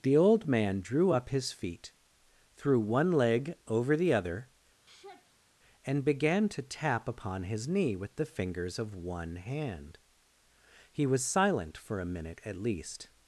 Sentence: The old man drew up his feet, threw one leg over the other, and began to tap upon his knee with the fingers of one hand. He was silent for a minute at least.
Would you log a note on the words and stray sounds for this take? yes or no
yes